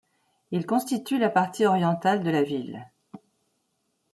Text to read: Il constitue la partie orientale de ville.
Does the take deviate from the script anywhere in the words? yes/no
yes